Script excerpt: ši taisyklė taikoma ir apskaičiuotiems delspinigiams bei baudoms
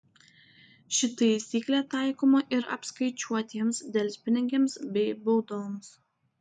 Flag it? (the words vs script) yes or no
no